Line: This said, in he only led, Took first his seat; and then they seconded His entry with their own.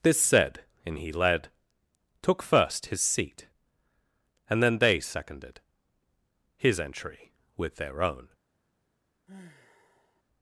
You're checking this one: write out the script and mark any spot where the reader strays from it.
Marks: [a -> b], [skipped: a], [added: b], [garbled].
This said, in he [skipped: only] led, Took first his seat; and then they seconded His entry with their own.